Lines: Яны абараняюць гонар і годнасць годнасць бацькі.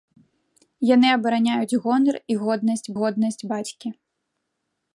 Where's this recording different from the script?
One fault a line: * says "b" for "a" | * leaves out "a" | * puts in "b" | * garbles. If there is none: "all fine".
all fine